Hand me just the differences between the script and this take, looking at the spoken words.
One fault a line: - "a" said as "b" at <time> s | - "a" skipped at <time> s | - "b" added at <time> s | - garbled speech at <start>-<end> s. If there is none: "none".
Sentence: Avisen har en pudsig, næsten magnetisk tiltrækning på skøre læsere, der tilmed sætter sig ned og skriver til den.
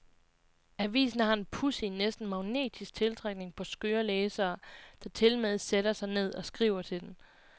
none